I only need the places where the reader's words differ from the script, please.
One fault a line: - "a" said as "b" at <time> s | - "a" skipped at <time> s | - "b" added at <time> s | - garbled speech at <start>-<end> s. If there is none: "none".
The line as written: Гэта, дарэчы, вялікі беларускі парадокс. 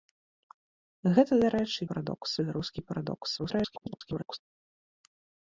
- "вялікі" said as "парадокс" at 1.9 s
- garbled speech at 3.4-4.4 s